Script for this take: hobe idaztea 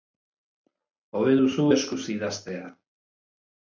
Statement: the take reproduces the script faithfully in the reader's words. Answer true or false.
false